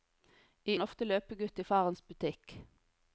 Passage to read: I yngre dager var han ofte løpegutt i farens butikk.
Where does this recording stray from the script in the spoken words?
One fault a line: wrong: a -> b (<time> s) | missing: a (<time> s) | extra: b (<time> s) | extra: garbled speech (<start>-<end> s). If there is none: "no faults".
missing: yngre dager var (0.8 s)